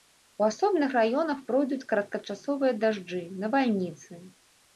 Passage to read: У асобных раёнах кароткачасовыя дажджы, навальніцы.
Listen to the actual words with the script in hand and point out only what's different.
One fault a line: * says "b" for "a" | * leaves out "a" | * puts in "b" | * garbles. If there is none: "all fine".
* puts in "пройдуць"